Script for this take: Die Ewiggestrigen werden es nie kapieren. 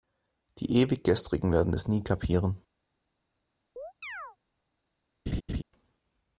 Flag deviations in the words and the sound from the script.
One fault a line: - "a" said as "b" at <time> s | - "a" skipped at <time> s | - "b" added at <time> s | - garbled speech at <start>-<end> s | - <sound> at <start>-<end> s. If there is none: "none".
- chirp at 3.8-4.4 s
- laugh at 5.3-5.6 s